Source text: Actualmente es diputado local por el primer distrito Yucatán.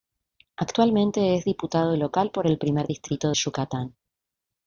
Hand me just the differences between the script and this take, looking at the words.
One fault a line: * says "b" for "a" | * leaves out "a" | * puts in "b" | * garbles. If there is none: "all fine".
all fine